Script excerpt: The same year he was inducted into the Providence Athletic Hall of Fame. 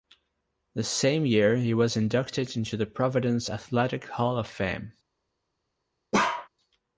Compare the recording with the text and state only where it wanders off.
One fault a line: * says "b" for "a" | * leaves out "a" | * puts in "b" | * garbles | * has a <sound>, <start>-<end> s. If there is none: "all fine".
* has a bark, 6.1-6.5 s